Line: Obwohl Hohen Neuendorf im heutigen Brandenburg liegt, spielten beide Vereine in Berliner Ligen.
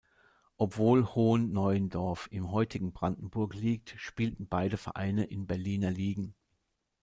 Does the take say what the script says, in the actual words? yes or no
yes